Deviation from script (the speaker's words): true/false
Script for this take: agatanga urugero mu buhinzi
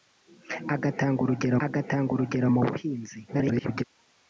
true